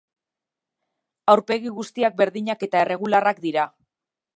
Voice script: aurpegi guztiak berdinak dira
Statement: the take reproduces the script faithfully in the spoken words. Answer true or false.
false